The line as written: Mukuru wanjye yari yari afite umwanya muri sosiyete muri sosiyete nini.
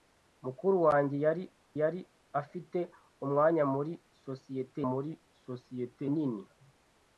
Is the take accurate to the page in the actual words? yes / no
yes